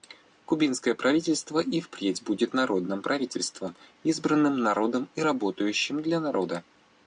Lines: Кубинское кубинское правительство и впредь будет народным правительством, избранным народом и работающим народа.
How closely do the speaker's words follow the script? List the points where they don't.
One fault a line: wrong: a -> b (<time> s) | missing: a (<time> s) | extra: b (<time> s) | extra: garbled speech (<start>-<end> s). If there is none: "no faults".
missing: кубинское (0.9 s)
extra: для (6.0 s)